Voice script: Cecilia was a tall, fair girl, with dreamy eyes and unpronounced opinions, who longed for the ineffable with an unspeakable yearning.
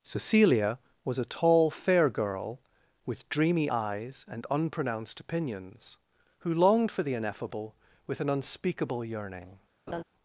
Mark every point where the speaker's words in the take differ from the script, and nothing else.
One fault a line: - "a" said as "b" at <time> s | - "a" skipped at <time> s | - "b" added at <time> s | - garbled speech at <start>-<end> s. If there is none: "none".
none